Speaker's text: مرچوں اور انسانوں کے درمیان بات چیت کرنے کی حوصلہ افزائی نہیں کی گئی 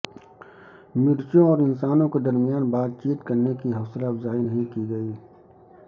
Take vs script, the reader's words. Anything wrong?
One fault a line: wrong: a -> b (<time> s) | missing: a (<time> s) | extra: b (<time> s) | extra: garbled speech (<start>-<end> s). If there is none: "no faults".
no faults